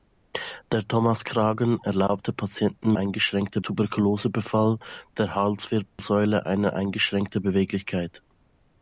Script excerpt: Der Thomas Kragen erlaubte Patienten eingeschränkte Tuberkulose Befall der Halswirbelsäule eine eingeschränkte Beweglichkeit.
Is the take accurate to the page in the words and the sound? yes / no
no